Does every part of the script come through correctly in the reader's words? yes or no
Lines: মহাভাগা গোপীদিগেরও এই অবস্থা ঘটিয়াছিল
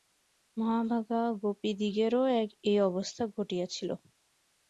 yes